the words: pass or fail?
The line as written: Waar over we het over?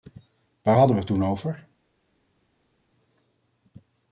fail